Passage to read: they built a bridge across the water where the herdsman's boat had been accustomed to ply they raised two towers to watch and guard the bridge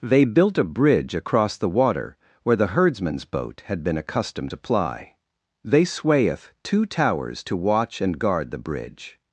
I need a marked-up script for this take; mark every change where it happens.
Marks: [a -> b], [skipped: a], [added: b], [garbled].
they built a bridge across the water where the herdsman's boat had been accustomed to ply they [raised -> swayeth] two towers to watch and guard the bridge